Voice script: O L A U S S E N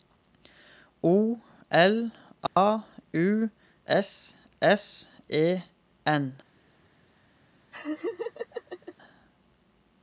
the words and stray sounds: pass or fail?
fail